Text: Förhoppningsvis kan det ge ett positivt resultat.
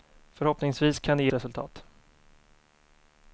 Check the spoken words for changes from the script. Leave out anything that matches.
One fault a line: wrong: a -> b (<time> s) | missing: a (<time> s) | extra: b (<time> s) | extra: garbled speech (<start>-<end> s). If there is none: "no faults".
missing: ett positivt (1.3 s)